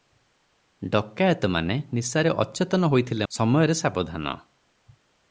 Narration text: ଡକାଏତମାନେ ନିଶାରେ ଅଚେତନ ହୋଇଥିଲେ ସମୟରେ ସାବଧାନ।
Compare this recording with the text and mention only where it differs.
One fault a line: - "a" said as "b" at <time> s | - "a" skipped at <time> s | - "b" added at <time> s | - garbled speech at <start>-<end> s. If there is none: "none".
none